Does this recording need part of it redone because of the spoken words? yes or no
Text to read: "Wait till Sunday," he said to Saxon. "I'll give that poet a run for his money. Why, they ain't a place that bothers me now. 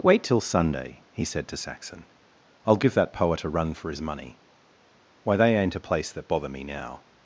yes